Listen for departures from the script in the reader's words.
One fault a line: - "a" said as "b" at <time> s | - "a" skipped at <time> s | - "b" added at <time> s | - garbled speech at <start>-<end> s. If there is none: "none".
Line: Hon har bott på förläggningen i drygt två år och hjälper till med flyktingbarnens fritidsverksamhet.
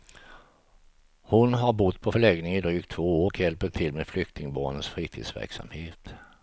none